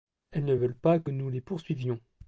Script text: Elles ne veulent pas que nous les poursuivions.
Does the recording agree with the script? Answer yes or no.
yes